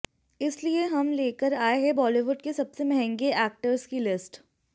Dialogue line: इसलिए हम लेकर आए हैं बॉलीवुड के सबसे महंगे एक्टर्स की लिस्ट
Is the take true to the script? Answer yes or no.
yes